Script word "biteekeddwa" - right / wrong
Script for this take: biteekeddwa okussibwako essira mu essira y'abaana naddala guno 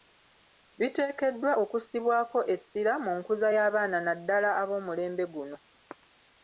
right